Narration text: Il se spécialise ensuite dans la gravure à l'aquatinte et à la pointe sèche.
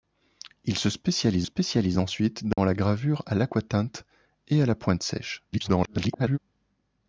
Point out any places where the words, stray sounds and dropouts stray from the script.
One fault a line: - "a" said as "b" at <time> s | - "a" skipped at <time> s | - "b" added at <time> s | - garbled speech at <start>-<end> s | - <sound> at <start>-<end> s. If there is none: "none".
- "spécialise" added at 1.4 s
- dropout at 2.5-2.6 s
- garbled speech at 5.5-6.4 s